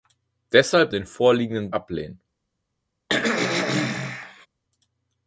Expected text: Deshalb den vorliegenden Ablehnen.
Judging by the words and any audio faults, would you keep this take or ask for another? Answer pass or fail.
fail